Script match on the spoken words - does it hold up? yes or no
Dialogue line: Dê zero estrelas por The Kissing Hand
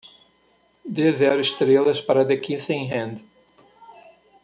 no